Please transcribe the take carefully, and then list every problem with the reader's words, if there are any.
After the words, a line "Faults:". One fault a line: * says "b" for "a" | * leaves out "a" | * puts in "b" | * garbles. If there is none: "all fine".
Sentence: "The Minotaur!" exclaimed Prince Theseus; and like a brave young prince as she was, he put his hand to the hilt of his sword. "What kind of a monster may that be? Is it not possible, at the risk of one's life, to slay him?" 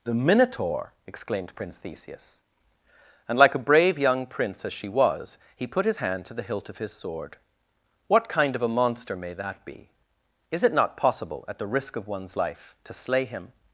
"The Minotaur!" exclaimed Prince Theseus; and like a brave young prince as she was, he put his hand to the hilt of his sword. "What kind of a monster may that be? Is it not possible, at the risk of one's life, to slay him?"
Faults:
all fine